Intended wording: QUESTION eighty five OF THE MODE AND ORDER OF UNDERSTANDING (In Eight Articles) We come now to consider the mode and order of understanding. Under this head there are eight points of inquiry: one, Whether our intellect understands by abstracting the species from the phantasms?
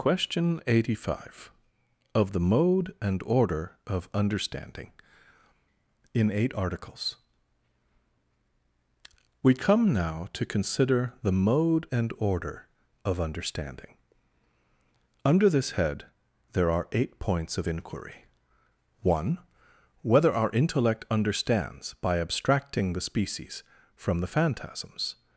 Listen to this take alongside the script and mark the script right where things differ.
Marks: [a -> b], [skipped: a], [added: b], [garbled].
QUESTION eighty five OF THE MODE AND ORDER OF UNDERSTANDING (In Eight Articles) We come now to consider the mode and order of understanding. Under this head there are eight points of inquiry: one, Whether our intellect understands by abstracting the species from the phantasms?